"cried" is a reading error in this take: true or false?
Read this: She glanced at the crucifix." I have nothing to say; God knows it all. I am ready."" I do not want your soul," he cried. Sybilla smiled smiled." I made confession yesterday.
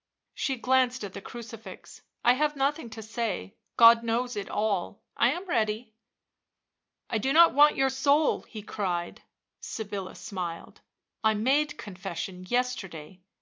false